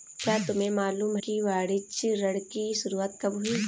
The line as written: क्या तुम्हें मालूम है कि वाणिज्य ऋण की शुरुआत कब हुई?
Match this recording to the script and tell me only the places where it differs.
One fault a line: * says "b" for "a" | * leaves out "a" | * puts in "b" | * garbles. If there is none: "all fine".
* leaves out "है"